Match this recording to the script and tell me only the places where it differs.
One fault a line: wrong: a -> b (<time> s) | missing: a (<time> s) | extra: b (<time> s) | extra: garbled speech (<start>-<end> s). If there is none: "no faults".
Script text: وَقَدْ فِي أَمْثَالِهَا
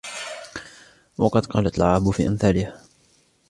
extra: قَالَتْ الْعَرَبُ (1.4 s)